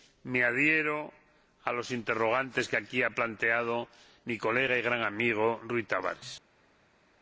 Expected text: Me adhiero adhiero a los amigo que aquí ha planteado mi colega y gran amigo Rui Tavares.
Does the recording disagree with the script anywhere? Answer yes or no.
yes